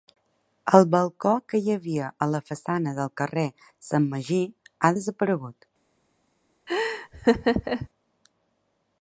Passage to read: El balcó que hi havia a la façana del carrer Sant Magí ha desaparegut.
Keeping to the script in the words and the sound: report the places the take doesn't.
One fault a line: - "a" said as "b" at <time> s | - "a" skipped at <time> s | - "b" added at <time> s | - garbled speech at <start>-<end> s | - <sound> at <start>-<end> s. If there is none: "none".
- laugh at 6.7-7.9 s